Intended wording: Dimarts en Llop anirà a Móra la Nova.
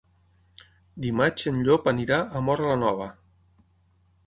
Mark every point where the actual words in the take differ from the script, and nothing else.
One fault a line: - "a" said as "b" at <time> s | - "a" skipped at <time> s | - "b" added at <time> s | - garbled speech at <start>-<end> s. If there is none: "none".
none